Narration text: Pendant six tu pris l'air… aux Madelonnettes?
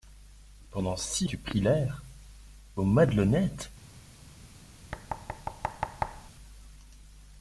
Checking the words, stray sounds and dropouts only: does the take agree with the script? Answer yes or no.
no